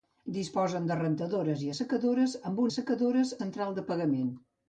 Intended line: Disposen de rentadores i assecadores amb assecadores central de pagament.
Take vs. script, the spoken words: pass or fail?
pass